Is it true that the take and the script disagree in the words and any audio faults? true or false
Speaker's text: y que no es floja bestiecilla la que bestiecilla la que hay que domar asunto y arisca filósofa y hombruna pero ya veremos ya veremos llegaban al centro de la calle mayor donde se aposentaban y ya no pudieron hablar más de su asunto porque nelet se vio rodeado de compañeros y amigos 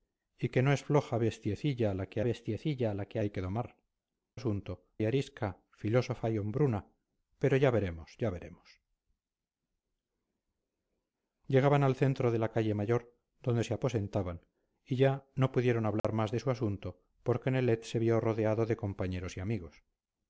true